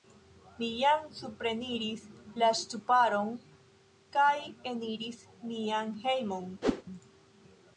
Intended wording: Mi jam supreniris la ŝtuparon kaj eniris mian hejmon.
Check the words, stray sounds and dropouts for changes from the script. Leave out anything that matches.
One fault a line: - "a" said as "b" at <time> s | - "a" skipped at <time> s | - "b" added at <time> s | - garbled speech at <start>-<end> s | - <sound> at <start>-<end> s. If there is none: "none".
- whoosh at 6.6-6.8 s